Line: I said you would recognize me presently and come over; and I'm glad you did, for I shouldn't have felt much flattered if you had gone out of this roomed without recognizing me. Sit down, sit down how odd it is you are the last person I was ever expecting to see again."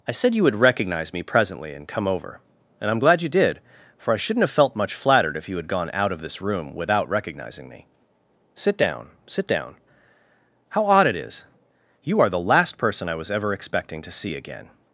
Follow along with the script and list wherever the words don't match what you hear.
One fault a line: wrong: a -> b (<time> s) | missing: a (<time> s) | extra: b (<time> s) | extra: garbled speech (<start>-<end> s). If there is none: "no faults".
wrong: roomed -> room (6.4 s)